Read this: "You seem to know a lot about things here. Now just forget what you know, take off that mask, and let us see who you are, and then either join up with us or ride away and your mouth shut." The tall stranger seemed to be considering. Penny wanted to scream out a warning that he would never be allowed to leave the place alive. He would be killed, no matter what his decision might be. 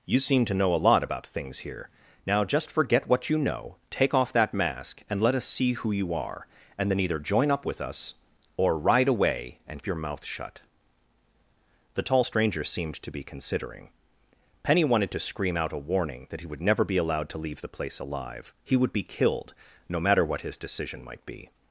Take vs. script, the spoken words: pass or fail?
pass